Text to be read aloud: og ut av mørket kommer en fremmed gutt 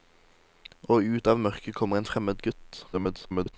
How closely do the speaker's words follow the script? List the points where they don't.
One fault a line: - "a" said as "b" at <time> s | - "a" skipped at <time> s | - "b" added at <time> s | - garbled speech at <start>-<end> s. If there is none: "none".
- garbled speech at 2.9-3.5 s